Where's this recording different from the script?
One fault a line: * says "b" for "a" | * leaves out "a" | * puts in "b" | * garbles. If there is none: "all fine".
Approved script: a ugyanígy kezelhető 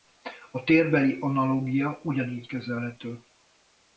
* puts in "térbeli analógia"